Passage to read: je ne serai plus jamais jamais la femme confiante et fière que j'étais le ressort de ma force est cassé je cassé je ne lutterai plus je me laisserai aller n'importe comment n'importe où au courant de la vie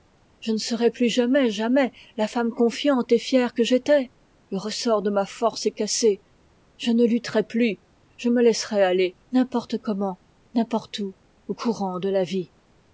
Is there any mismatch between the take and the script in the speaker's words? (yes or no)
yes